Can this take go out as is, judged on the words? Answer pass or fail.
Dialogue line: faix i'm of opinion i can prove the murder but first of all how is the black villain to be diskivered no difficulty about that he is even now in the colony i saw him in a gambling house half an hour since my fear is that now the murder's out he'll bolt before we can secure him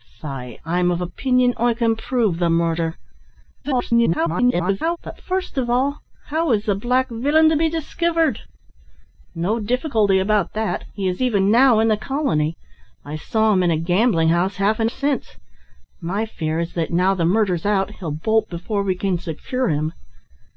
fail